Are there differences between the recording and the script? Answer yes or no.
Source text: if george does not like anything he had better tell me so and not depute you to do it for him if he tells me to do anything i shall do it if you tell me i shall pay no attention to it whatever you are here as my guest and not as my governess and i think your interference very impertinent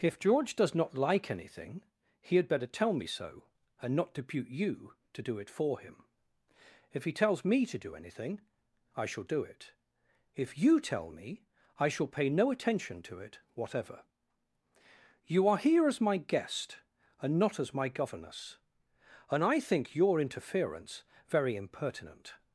no